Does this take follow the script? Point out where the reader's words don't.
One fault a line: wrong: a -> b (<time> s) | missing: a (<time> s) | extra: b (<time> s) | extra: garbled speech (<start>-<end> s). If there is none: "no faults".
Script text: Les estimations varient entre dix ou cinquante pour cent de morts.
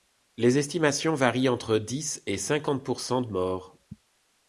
wrong: ou -> et (2.2 s)